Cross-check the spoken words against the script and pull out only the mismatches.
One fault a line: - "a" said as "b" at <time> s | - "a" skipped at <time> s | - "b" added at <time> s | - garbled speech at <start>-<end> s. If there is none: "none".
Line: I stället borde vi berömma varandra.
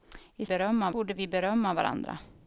- "stället" said as "berömma" at 0.4 s